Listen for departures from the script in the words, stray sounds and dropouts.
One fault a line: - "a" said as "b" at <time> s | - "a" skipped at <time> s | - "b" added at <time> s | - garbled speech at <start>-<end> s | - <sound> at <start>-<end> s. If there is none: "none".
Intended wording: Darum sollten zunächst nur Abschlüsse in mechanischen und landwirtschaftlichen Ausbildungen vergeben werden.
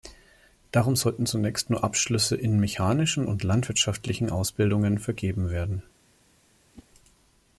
- whoosh at 6.7-6.9 s